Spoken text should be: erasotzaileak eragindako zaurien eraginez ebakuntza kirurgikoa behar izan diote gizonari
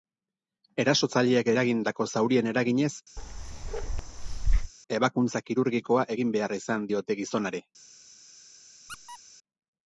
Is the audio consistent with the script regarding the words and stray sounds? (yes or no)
no